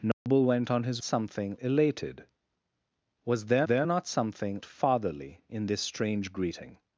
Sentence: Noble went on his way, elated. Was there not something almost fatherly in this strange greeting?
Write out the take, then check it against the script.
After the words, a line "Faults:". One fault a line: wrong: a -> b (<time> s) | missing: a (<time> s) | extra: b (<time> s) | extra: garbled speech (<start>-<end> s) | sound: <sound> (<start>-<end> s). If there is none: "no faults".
Noble went on his something, elated. Was there there not something fatherly in this strange greeting?
Faults:
sound: dropout (0.1-0.3 s)
wrong: way -> something (1.0 s)
extra: there (3.6 s)
missing: almost (4.6 s)